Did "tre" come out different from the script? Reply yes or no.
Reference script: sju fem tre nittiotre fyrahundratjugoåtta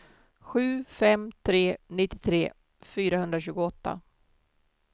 no